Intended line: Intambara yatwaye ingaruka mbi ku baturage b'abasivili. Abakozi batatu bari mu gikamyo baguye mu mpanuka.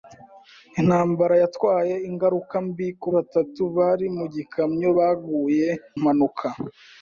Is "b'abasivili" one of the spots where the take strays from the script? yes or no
yes